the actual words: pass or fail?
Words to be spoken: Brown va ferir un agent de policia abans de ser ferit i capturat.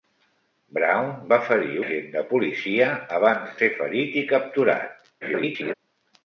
fail